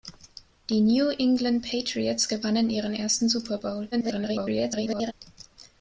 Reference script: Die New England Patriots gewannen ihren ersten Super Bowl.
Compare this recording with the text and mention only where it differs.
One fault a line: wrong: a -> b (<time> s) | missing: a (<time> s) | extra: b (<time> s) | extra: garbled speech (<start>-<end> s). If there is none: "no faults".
extra: garbled speech (3.9-5.1 s)